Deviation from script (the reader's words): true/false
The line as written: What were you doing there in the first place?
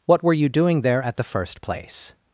true